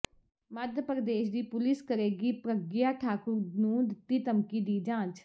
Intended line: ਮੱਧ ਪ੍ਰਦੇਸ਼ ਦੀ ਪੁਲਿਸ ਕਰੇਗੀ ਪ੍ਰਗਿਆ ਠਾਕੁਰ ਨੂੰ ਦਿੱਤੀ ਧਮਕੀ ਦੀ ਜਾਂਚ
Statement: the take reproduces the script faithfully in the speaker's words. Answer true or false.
true